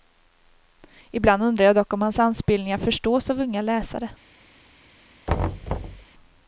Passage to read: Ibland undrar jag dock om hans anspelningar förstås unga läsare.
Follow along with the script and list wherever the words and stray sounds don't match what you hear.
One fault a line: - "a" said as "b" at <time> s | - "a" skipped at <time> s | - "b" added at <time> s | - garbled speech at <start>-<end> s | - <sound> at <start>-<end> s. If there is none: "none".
- "av" added at 3.3 s
- thud at 5.3-6.1 s